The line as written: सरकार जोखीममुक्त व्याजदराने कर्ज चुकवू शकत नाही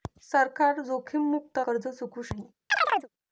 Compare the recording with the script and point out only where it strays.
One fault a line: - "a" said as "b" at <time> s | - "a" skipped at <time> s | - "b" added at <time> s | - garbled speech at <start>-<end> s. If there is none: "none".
- "व्याजदराने" skipped at 1.6 s
- "शकत" skipped at 2.3 s